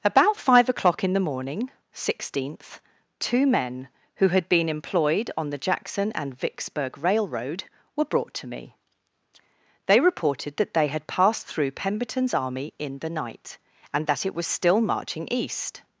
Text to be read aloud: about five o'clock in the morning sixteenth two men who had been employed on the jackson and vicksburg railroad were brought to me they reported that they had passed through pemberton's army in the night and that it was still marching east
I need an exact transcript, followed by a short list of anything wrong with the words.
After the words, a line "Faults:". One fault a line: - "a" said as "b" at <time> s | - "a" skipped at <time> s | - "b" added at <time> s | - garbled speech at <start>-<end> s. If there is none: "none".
about five o'clock in the morning sixteenth two men who had been employed on the jackson and vicksburg railroad were brought to me they reported that they had passed through pemberton's army in the night and that it was still marching east
Faults:
none